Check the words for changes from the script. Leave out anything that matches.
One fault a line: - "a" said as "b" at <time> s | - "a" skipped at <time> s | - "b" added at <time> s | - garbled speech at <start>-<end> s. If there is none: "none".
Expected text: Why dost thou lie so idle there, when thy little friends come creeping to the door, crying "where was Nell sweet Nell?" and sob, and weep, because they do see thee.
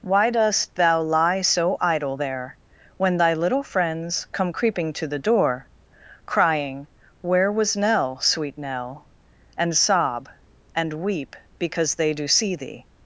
none